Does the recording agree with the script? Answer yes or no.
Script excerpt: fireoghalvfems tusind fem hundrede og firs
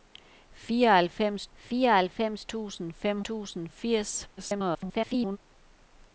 no